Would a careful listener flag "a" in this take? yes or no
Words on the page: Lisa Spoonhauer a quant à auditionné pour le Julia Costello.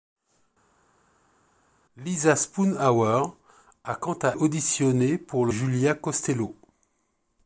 no